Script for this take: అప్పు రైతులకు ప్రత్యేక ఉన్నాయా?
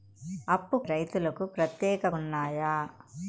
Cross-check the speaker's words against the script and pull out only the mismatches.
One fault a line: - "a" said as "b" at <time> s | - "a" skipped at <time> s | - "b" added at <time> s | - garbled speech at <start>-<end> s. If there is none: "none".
none